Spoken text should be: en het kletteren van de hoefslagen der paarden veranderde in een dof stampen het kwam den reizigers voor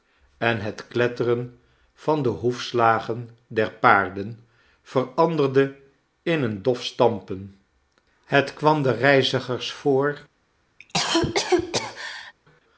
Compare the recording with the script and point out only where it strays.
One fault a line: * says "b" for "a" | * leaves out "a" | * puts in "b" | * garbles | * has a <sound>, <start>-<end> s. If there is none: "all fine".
* has a cough, 10.8-12.3 s